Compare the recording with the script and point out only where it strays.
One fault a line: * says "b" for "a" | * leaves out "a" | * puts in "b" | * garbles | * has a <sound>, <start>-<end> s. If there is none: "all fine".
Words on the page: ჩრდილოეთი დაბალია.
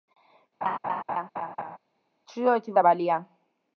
* has a laugh, 0.6-1.8 s